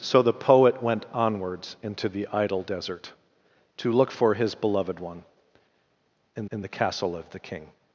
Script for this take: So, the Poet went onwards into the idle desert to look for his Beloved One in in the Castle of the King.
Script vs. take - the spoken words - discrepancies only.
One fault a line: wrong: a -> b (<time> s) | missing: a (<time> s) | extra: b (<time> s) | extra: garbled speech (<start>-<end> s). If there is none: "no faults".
no faults